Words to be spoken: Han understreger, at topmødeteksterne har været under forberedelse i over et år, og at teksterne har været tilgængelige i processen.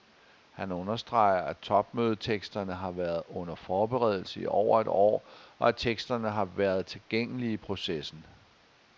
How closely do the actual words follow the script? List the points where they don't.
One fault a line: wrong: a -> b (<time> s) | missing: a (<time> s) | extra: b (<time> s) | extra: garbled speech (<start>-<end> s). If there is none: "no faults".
no faults